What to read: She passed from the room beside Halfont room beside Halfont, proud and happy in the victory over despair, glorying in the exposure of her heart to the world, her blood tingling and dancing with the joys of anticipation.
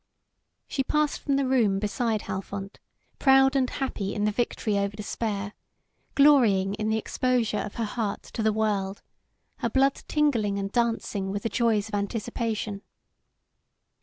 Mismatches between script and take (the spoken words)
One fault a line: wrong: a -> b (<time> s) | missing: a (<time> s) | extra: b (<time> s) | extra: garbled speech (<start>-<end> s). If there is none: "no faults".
missing: room beside Halfont (2.8 s)